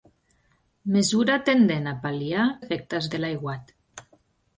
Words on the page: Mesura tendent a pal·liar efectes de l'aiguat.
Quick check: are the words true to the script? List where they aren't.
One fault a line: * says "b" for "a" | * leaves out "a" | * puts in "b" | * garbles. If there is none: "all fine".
all fine